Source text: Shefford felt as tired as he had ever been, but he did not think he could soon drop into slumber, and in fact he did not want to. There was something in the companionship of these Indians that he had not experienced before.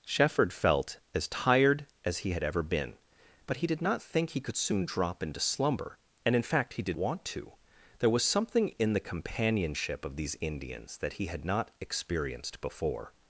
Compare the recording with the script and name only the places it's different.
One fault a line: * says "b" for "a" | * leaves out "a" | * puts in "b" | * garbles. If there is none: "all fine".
* leaves out "not"